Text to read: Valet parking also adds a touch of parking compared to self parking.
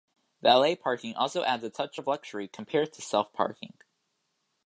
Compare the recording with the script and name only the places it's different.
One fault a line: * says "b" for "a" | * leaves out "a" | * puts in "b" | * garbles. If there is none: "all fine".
* says "luxury" for "parking"